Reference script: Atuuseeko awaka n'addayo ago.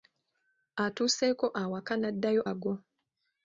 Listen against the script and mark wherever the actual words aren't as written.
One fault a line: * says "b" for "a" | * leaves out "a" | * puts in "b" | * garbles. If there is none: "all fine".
all fine